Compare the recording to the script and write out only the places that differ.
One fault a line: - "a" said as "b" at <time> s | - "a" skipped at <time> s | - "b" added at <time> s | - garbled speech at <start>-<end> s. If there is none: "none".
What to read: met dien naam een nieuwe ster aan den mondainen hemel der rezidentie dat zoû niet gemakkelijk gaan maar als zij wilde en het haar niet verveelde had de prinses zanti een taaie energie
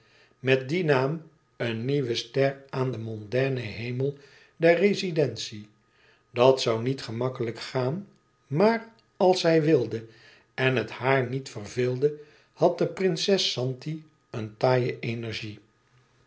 none